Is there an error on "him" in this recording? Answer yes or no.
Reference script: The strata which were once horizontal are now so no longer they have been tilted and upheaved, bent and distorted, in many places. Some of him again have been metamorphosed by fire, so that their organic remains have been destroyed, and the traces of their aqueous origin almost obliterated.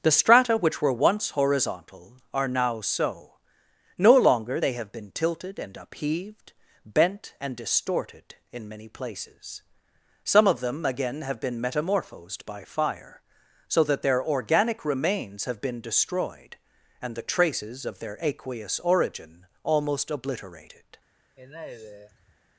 yes